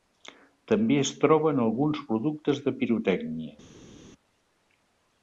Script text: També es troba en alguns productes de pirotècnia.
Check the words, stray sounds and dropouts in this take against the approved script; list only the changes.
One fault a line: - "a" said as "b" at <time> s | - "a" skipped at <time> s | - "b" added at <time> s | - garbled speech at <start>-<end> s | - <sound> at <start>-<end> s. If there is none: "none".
none